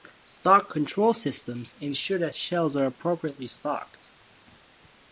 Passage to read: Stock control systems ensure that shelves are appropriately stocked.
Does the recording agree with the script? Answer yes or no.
yes